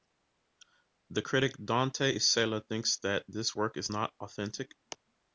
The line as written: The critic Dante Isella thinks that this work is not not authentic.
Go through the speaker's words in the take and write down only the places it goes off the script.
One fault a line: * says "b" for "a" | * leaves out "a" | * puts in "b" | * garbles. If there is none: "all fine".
* leaves out "not"